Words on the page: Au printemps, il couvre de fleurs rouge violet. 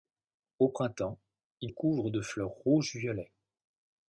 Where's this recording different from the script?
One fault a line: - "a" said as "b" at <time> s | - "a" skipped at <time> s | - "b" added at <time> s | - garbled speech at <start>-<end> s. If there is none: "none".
none